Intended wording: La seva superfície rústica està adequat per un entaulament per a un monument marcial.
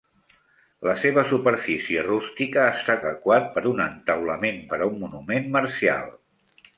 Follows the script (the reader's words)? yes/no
yes